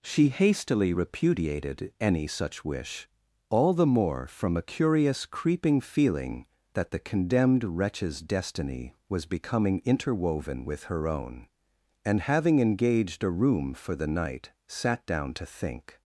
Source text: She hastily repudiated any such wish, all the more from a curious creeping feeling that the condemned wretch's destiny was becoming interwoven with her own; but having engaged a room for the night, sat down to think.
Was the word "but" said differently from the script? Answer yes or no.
yes